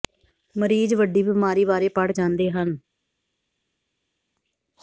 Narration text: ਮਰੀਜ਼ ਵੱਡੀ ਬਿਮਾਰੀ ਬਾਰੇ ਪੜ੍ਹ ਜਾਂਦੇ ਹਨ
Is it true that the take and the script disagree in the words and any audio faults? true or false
false